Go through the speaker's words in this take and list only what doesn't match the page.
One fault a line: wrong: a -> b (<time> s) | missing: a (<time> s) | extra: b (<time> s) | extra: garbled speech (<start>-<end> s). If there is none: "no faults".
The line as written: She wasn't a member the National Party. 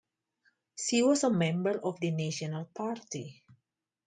wrong: wasn't -> was (1.0 s)
extra: of (1.8 s)